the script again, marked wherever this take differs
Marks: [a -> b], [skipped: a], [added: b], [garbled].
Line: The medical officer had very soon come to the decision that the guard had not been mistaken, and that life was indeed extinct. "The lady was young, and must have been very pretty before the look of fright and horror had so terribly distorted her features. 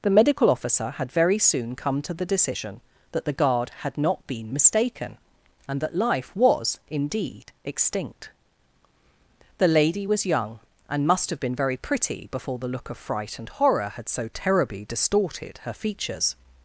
The medical officer had very soon come to the decision that the guard had not been mistaken, and that life was indeed extinct. "The lady was young, and must have been very pretty before the look of fright and horror had so terribly distorted her features.